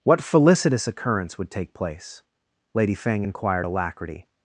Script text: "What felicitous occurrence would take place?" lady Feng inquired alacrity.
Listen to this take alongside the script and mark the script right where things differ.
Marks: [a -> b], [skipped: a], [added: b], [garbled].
"What felicitous occurrence would take place?" lady Feng inquired alacrity.